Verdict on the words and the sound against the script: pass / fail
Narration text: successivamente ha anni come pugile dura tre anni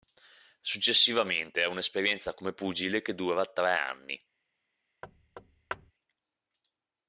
fail